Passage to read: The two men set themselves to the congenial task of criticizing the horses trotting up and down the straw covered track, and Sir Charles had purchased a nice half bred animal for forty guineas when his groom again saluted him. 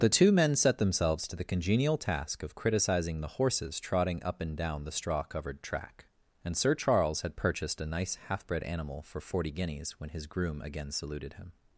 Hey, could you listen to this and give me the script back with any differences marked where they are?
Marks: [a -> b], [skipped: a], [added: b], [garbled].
The two men set themselves to the congenial task of criticizing the horses trotting up and down the straw covered track, and Sir Charles had purchased a nice half bred animal for forty guineas when his groom again saluted him.